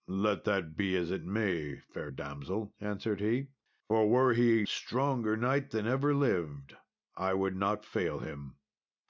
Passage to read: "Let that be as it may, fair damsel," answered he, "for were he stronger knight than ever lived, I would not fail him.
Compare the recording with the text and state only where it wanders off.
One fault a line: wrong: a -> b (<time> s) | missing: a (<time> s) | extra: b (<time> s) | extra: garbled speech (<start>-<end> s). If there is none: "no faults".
no faults